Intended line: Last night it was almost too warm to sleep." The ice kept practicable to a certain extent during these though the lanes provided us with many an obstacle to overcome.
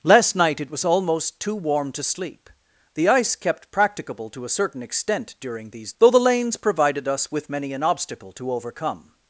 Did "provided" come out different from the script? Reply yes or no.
no